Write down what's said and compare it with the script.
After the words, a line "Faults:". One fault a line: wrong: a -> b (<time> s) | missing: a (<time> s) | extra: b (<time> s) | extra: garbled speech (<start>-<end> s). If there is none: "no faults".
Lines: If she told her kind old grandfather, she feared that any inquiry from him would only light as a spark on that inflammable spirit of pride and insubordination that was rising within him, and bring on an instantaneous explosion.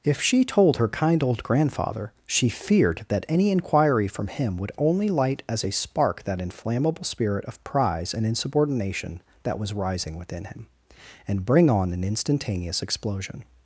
If she told her kind old grandfather, she feared that any inquiry from him would only light as a spark that inflammable spirit of prize and insubordination that was rising within him, and bring on an instantaneous explosion.
Faults:
missing: on (6.2 s)
wrong: pride -> prize (7.6 s)